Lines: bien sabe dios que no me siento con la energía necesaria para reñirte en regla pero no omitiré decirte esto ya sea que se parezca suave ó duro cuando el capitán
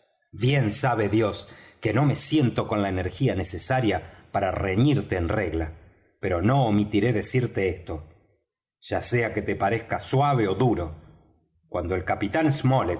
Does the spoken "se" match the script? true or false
false